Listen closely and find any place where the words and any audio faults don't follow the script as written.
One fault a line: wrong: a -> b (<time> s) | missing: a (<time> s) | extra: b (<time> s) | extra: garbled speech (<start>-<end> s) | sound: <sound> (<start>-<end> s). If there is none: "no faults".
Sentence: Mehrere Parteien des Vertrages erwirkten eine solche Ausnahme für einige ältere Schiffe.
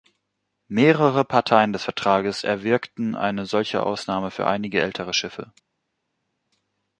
no faults